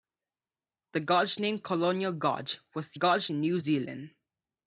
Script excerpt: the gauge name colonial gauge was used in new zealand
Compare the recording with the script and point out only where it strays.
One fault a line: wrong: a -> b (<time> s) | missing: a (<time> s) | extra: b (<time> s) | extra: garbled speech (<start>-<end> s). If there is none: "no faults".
wrong: used -> gauge (2.9 s)